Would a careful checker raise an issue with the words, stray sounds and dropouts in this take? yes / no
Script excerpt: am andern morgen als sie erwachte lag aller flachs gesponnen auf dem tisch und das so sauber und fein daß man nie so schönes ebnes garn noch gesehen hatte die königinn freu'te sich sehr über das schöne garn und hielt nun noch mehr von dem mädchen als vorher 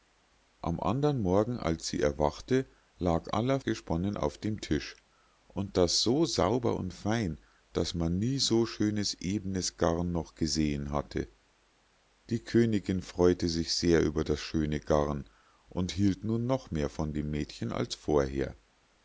yes